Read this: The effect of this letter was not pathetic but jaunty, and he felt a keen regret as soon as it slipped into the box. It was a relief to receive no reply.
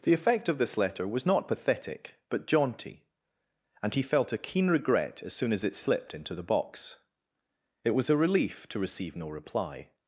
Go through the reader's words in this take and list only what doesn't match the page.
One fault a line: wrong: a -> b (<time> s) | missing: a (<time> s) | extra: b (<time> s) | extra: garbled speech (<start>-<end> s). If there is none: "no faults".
no faults